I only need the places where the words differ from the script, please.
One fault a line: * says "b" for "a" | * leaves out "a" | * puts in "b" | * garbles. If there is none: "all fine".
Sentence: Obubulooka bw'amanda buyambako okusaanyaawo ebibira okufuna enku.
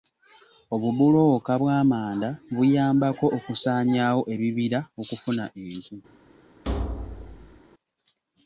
all fine